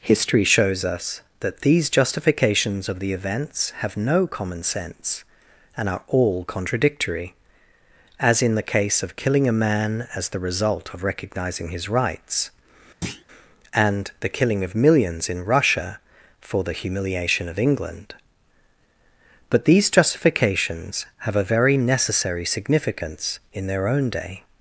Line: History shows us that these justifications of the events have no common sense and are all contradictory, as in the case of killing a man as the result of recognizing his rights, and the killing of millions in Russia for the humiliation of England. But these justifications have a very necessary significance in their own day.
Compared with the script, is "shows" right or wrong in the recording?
right